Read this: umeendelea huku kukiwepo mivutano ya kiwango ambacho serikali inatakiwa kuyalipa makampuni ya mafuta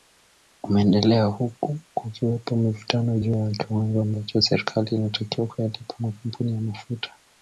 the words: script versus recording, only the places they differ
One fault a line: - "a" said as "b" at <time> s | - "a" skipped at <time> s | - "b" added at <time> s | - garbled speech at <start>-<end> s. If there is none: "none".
- "juu" added at 3.2 s